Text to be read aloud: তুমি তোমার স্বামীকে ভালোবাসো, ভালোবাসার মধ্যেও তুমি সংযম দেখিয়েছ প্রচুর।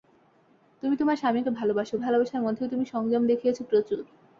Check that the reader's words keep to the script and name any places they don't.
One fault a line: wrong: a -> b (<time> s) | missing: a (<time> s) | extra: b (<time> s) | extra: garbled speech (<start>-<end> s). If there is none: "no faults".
no faults